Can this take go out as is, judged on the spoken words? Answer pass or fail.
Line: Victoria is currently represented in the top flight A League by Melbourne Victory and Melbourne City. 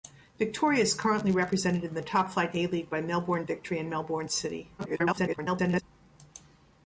fail